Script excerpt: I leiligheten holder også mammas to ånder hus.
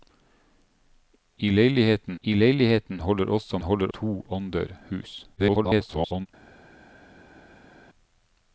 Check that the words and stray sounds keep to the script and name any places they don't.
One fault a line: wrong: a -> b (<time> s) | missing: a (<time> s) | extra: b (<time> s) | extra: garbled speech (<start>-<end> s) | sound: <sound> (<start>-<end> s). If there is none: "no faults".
extra: I leiligheten (2.2 s)
wrong: mammas -> holder (3.6 s)
extra: garbled speech (5.4-6.3 s)